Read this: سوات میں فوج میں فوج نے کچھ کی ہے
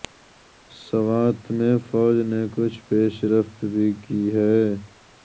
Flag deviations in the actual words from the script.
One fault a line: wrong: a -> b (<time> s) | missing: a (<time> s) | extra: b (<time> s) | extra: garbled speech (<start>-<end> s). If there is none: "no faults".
wrong: میں فوج نے کچھ -> نے کچھ پیش رفت بھی (2.2 s)